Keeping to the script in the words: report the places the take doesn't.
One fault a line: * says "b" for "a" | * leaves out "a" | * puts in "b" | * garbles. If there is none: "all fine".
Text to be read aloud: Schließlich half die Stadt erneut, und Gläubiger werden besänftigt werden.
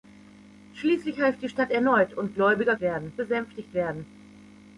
all fine